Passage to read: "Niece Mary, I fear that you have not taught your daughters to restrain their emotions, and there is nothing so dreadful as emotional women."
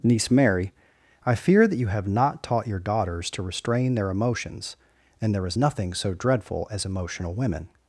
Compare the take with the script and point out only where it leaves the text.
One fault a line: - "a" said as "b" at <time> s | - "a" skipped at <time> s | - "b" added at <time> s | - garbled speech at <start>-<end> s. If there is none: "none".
none